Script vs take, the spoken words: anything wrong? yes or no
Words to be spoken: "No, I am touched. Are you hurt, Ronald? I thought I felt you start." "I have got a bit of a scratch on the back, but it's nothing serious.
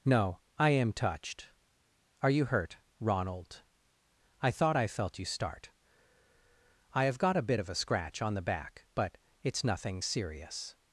no